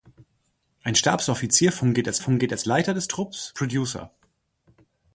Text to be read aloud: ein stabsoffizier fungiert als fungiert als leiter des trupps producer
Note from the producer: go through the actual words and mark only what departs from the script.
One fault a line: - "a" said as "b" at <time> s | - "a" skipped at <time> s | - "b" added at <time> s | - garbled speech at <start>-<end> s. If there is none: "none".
none